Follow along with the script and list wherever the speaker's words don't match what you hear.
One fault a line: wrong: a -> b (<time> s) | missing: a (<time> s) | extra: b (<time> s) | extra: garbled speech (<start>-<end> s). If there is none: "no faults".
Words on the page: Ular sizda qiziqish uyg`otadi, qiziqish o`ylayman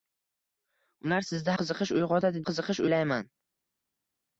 no faults